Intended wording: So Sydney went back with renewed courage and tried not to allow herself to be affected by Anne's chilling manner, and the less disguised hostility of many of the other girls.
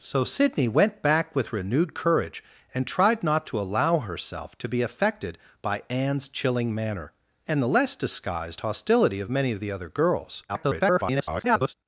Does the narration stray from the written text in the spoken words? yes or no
yes